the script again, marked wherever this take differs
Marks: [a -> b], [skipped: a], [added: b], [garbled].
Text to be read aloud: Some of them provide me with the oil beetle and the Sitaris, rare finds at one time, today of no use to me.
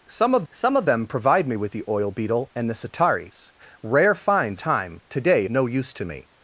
Some of [added: some of] them provide me with the oil beetle and the Sitaris, rare finds [skipped: at one] time, today [skipped: of] no use to me.